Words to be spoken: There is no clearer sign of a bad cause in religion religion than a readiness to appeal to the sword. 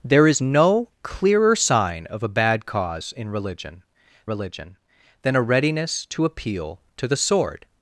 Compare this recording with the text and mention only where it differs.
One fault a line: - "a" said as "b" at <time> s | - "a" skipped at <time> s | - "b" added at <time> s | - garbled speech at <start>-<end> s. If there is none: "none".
none